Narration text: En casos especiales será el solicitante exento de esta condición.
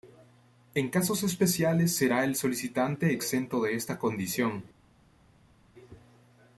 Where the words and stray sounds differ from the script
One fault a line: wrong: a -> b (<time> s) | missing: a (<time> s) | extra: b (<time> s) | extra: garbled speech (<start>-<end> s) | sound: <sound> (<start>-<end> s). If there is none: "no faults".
no faults